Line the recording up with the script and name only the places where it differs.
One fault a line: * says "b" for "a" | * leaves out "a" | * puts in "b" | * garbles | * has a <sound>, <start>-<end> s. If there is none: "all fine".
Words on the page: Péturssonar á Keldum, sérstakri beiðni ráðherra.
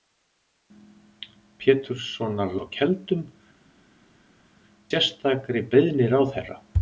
all fine